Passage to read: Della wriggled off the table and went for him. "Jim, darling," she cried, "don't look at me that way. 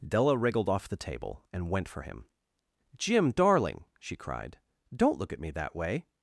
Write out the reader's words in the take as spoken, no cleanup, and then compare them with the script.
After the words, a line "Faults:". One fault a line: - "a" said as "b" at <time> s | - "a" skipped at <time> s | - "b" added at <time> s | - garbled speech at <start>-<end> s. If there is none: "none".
Della wriggled off the table and went for him. "Jim, darling," she cried, "don't look at me that way.
Faults:
none